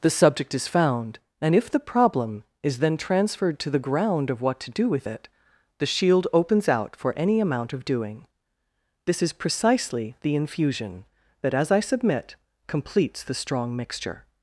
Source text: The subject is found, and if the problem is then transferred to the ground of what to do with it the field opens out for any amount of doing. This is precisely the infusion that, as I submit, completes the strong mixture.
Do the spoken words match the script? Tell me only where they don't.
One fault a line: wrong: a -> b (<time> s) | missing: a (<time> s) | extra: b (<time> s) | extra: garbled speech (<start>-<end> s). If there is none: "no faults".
wrong: field -> shield (5.8 s)